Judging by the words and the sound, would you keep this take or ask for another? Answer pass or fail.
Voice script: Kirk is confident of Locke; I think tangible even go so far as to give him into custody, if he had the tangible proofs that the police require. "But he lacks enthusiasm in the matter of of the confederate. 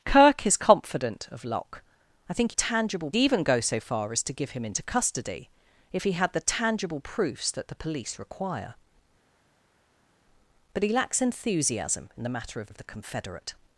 pass